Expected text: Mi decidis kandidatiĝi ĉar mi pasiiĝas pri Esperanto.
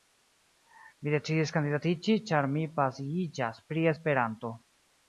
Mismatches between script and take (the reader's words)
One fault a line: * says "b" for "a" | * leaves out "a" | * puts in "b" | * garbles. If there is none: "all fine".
all fine